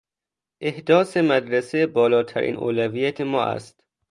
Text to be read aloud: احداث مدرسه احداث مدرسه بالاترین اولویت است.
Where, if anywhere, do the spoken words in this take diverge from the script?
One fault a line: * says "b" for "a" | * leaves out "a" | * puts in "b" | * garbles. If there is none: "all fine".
* leaves out "احداث مدرسه"
* puts in "ما"